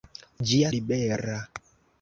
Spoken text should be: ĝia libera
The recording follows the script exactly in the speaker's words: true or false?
true